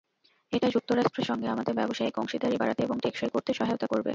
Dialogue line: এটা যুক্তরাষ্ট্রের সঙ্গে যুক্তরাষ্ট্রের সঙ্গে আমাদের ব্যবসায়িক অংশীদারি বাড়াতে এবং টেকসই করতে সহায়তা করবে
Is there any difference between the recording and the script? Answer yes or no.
yes